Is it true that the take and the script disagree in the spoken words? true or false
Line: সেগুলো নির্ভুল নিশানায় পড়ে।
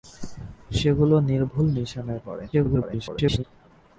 true